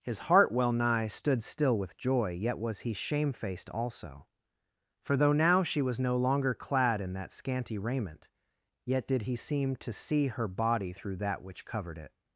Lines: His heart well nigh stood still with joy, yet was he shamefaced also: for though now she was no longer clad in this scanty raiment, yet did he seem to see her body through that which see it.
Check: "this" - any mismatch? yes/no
yes